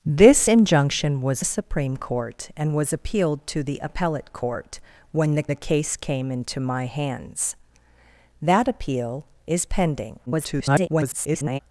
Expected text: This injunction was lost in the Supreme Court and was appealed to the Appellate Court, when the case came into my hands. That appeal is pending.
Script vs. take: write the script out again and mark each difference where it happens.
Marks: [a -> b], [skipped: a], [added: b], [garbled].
This injunction was [skipped: lost in] the Supreme Court and was appealed to the Appellate Court, when the [added: the] case came into my hands. That appeal is pending. [garbled]